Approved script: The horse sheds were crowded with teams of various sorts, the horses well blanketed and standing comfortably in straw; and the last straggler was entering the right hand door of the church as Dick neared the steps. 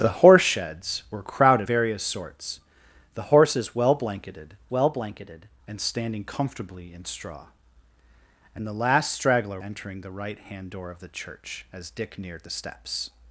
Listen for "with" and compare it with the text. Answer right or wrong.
wrong